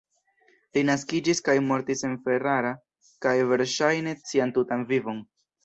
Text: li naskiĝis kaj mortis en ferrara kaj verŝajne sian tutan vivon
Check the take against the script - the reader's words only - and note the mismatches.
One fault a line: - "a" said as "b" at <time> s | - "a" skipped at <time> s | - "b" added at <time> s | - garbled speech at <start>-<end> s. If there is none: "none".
none